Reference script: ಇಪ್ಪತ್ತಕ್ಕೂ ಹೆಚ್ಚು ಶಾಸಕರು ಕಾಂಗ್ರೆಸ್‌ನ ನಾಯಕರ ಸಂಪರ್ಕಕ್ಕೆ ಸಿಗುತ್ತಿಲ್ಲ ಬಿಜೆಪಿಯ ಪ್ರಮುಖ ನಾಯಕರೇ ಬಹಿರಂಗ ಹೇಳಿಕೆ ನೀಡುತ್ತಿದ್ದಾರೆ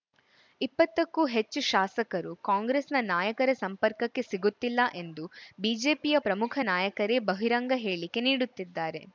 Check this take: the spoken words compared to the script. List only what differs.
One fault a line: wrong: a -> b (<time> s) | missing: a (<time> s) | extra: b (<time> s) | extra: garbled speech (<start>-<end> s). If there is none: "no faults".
extra: ಎಂದು (5.0 s)